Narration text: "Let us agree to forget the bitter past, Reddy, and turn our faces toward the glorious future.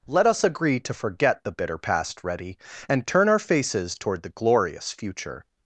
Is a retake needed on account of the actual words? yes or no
no